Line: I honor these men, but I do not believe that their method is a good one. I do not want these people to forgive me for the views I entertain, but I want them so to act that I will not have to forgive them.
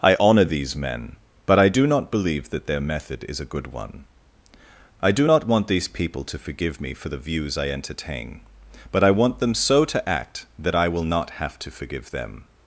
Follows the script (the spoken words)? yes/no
yes